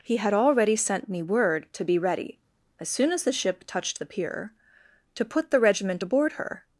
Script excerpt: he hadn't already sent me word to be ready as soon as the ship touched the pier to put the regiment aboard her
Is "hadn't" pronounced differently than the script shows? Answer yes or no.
yes